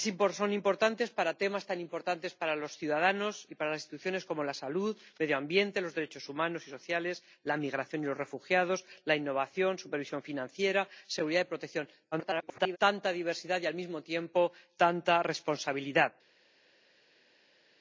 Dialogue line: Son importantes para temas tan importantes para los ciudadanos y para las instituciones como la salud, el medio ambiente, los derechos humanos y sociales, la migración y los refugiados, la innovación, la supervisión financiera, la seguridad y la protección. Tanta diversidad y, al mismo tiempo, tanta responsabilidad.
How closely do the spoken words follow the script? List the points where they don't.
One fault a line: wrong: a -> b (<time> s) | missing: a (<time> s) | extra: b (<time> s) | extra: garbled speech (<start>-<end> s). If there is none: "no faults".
extra: garbled speech (12.1-12.8 s)